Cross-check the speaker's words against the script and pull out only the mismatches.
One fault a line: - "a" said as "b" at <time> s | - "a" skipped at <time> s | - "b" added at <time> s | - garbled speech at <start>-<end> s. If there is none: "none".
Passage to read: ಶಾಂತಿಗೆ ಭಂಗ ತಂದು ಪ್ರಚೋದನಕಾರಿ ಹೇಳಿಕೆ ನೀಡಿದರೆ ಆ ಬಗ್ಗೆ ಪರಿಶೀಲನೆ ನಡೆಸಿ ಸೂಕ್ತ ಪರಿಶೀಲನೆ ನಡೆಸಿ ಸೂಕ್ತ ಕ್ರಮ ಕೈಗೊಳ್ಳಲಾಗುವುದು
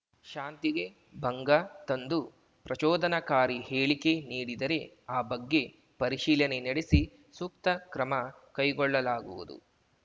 - "ಪರಿಶೀಲನೆ ನಡೆಸಿ ಸೂಕ್ತ" skipped at 7.7 s